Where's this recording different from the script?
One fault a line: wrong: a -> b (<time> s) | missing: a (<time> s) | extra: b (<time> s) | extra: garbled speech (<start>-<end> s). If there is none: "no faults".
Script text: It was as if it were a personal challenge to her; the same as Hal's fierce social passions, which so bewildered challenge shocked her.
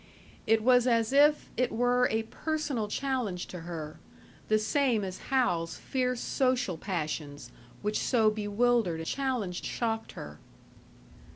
no faults